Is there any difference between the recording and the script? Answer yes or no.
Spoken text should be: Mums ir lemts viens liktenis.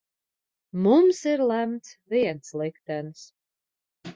no